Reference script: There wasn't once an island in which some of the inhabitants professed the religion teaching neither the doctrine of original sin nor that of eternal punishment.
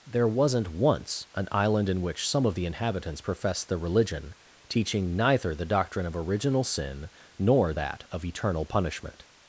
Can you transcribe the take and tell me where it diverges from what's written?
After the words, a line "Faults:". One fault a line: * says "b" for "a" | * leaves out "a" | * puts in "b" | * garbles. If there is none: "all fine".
There wasn't once an island in which some of the inhabitants professed the religion teaching neither the doctrine of original sin nor that of eternal punishment.
Faults:
all fine